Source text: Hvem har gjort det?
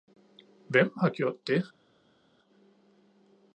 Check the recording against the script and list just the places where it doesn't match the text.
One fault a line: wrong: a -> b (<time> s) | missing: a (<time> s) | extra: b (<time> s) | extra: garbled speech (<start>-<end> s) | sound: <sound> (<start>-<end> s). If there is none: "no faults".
no faults